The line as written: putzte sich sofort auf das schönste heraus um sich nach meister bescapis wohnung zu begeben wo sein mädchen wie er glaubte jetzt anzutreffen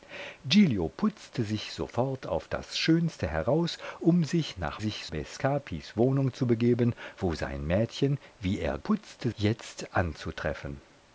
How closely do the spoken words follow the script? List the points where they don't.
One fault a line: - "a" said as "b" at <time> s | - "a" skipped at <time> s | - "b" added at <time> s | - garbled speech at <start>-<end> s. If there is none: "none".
- "meister" said as "sich" at 4.8 s
- "glaubte" said as "putzte" at 8.8 s